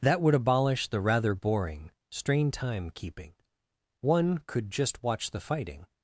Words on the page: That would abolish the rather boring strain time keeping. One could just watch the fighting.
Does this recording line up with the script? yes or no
yes